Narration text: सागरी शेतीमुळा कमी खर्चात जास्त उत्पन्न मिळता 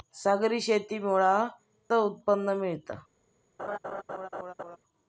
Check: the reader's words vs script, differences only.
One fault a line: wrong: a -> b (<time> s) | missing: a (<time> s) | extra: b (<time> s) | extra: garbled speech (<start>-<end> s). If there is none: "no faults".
missing: कमी खर्चात जास्त (1.3 s)